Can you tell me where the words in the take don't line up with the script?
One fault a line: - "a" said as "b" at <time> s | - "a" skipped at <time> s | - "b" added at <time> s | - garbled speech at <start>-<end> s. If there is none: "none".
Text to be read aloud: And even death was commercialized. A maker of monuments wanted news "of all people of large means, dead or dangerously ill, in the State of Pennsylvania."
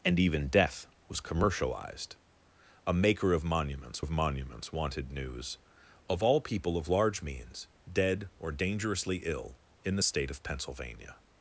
- "of monuments" added at 4.0 s